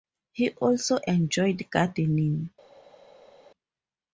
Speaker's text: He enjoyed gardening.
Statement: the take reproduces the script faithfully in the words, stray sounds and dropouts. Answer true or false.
false